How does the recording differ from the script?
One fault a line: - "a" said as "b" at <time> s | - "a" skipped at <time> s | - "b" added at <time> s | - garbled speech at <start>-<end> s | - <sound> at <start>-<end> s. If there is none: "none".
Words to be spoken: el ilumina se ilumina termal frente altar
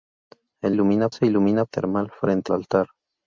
none